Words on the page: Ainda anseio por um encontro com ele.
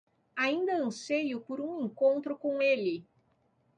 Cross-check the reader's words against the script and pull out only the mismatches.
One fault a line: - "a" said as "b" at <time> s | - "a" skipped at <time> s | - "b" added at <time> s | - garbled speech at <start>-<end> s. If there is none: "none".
none